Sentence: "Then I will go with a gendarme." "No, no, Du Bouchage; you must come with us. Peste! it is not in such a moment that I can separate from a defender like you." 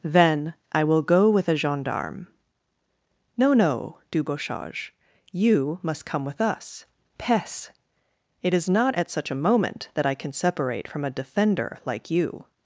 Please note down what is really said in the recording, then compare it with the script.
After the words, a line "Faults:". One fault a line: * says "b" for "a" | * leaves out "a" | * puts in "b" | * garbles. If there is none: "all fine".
"Then I will go with a gendarme." "No, no, Du Bouchage; you must come with us. Peste! it is not at such a moment that I can separate from a defender like you."
Faults:
* says "at" for "in"